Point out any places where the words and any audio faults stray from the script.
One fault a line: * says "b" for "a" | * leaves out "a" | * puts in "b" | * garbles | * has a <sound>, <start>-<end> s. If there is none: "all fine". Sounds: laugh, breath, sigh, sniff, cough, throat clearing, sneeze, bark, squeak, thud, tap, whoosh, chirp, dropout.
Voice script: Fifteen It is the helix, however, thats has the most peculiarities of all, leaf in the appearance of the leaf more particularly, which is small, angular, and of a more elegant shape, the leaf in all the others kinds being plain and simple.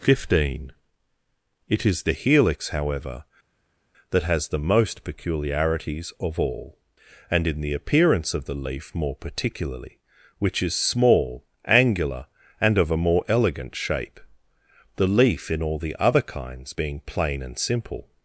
* says "that" for "thats"
* says "and" for "leaf"
* says "other" for "others"